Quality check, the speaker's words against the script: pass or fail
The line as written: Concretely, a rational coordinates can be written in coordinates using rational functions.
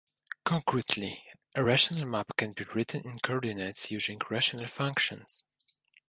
fail